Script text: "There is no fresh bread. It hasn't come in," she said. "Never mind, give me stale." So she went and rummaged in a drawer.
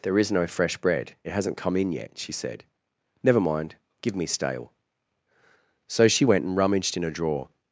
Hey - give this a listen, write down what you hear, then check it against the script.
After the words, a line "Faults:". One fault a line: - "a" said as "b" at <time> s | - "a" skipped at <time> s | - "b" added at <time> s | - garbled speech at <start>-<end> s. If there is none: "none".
"There is no fresh bread. It hasn't come in yet," she said. "Never mind, give me stale." So she went and rummaged in a drawer.
Faults:
- "yet" added at 1.9 s